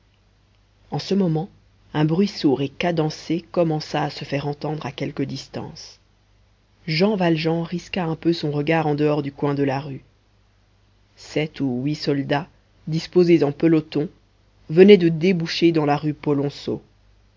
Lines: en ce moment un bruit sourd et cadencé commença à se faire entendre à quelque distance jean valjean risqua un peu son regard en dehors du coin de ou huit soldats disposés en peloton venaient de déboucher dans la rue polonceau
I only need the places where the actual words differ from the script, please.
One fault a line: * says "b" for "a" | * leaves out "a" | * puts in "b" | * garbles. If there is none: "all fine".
* puts in "la rue sept"